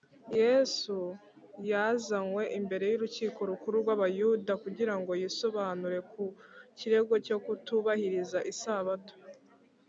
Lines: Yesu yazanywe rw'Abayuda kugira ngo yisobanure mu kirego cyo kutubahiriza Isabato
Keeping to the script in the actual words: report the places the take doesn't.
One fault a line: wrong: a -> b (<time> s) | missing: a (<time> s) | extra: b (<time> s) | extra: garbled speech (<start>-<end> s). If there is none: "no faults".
extra: imbere y'Urukiko Rukuru (2.6 s)
wrong: mu -> ku (6.1 s)